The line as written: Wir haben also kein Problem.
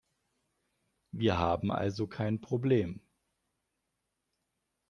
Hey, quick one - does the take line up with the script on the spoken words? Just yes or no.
yes